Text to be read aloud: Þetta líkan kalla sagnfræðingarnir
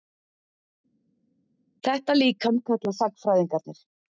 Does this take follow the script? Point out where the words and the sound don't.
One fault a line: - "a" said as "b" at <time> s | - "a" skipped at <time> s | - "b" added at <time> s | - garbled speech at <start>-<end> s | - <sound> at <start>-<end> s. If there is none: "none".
none